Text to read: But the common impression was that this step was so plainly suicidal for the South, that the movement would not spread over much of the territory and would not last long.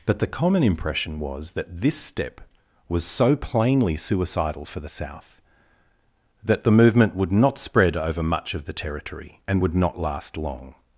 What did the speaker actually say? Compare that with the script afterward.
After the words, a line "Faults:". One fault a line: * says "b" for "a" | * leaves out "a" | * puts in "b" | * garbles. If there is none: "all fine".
But the common impression was that this step was so plainly suicidal for the South, that the movement would not spread over much of the territory and would not last long.
Faults:
all fine